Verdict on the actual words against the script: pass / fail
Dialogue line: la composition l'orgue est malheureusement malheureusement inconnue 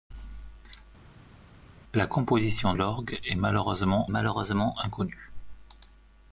pass